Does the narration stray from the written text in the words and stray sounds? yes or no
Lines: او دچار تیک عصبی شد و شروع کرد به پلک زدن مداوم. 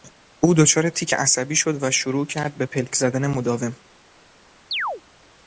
yes